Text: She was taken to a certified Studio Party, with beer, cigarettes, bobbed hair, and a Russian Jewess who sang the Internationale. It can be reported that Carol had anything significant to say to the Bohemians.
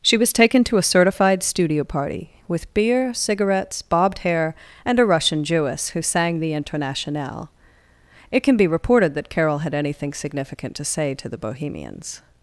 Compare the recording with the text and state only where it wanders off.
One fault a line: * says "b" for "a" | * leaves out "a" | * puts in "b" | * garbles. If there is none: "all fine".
all fine